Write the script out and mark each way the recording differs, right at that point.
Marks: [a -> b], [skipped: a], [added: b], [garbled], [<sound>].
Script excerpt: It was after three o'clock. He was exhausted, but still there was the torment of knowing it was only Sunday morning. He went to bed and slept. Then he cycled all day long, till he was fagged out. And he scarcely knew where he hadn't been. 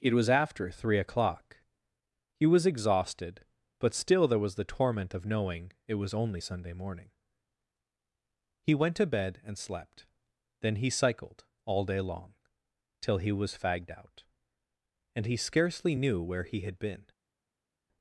It was after three o'clock. He was exhausted, but still there was the torment of knowing it was only Sunday morning. He went to bed and slept. Then he cycled all day long, till he was fagged out. And he scarcely knew where he [hadn't -> had] been.